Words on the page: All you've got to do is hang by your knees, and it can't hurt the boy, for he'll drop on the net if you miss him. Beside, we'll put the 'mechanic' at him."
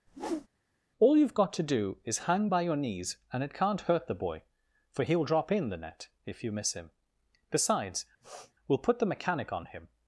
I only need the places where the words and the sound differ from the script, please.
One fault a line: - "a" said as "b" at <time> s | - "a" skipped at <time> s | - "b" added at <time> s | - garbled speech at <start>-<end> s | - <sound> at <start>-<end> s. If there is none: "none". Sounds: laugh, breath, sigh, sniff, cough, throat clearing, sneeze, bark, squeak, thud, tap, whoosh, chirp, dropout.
- whoosh at 0.1-0.5 s
- "on" said as "in" at 5.5 s
- "Beside" said as "Besides" at 7.5 s
- sniff at 8.2-8.5 s
- "at" said as "on" at 9.5 s